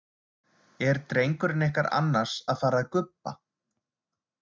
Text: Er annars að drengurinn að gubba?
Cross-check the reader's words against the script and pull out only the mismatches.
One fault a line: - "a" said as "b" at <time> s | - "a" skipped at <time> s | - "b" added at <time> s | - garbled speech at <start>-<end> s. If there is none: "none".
- "drengurinn ykkar" added at 1.1 s
- "drengurinn" said as "fara" at 2.6 s